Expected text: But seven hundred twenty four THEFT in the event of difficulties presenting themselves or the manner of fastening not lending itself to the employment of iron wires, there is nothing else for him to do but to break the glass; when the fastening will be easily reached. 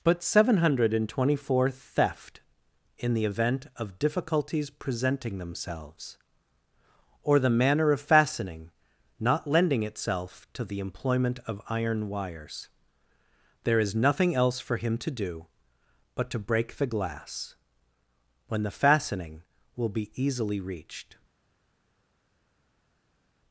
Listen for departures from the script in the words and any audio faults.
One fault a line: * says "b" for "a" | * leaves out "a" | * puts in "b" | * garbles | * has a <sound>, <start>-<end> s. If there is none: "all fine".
all fine